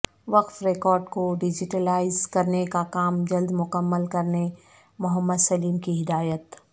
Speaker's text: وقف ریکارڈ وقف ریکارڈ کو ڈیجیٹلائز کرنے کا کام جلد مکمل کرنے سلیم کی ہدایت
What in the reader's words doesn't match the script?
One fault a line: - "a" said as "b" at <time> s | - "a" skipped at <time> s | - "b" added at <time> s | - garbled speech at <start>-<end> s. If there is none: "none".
- "وقف ریکارڈ" skipped at 1.0 s
- "محمد" added at 5.0 s